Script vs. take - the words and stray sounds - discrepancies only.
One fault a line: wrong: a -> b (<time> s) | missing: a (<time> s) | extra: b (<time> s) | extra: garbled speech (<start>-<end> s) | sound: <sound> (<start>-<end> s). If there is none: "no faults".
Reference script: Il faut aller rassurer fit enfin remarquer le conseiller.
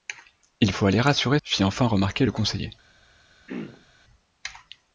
sound: throat clearing (3.5-3.9 s)